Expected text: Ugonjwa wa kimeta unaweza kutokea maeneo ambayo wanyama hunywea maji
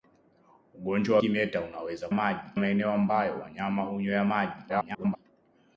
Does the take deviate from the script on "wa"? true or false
true